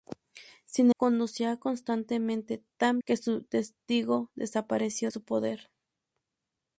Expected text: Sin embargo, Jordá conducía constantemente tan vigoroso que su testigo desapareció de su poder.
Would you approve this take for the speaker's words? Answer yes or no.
no